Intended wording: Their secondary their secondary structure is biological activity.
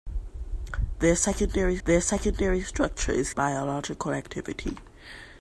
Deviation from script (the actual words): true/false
false